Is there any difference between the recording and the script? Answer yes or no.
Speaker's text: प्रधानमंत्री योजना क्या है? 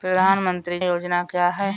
no